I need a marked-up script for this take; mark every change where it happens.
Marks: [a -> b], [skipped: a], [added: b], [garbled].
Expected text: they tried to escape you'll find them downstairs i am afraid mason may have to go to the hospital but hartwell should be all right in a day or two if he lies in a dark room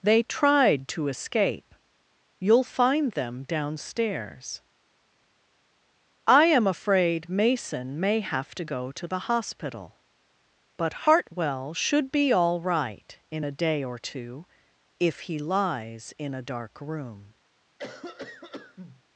they tried to escape you'll find them downstairs i am afraid mason may have to go to the hospital but hartwell should be all right in a day or two if he lies in a dark room